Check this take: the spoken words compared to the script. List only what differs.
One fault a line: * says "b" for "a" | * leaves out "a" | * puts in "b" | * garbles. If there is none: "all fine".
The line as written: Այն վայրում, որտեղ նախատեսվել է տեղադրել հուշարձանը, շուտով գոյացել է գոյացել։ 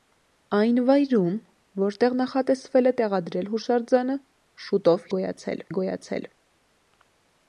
all fine